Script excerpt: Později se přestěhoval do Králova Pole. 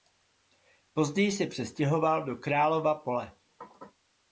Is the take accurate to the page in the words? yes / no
yes